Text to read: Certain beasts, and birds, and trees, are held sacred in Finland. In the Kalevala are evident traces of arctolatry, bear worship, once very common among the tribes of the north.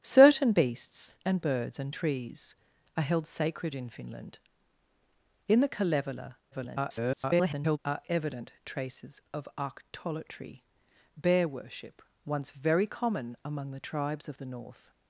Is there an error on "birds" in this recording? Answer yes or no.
no